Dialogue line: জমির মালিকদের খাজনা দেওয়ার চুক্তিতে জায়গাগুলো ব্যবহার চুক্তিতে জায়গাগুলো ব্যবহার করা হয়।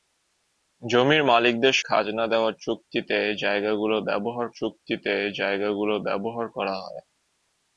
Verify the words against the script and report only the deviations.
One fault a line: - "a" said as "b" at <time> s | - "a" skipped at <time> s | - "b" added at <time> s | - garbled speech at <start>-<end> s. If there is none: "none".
none